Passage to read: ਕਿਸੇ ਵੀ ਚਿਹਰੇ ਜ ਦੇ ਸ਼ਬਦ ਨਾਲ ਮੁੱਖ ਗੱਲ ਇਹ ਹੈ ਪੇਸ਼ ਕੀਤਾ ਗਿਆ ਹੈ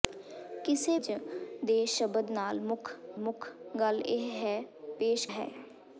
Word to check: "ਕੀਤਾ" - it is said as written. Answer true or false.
false